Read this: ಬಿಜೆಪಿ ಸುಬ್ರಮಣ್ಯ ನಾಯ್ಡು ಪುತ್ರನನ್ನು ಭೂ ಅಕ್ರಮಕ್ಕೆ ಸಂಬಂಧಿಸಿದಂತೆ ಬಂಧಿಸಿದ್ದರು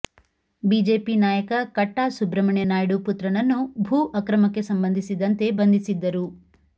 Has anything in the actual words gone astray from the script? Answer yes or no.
yes